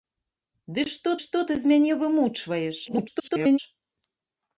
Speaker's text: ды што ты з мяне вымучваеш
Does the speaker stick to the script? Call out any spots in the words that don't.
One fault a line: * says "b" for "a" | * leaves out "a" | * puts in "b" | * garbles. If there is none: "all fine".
* puts in "што"
* garbles